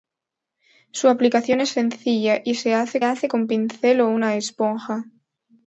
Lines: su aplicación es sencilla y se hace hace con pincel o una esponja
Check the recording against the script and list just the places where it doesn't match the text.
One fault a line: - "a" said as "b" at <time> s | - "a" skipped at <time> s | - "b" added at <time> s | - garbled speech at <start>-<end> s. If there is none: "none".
none